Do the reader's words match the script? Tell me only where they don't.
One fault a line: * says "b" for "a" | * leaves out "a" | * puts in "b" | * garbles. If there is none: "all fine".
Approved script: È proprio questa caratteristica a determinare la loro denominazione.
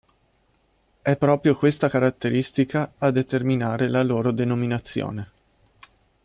all fine